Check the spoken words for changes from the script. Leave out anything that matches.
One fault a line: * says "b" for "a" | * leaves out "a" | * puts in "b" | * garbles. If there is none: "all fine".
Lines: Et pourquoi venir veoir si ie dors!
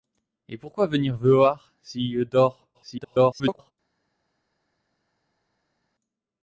* garbles